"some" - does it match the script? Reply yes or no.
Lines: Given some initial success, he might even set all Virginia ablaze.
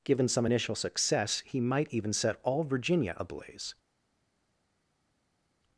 yes